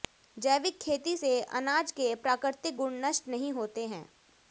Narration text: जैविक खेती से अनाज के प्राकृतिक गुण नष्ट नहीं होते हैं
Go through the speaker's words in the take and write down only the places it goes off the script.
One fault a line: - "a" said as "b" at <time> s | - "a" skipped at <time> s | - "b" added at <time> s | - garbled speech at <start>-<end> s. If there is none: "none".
none